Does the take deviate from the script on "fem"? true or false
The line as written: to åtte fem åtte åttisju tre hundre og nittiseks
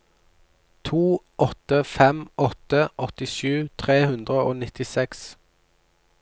false